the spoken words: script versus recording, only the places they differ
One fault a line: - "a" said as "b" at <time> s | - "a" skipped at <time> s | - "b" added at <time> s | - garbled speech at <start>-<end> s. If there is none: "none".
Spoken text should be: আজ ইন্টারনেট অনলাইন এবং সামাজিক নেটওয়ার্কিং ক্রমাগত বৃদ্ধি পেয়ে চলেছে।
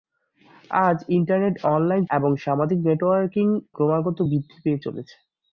none